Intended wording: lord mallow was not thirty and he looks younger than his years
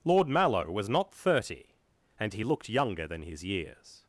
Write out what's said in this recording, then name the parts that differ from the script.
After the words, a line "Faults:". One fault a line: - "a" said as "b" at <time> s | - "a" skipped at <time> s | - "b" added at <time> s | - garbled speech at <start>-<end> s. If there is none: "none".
lord mallow was not thirty and he looked younger than his years
Faults:
- "looks" said as "looked" at 2.4 s